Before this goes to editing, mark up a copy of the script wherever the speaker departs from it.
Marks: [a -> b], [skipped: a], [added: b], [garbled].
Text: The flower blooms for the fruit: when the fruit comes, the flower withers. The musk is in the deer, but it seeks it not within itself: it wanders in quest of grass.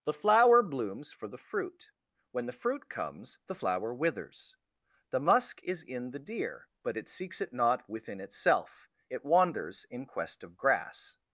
The flower blooms for the fruit: when the fruit comes, the flower withers. The musk is in the deer, but it seeks it not within itself: it wanders in quest of grass.